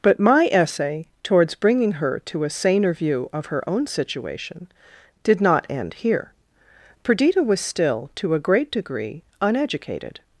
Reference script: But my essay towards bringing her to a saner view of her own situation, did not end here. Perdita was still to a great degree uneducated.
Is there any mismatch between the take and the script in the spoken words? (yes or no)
no